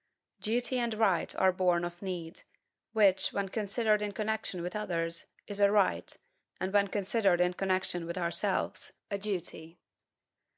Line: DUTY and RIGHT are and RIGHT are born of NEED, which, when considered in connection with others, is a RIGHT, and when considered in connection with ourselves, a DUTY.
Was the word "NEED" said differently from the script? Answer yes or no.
no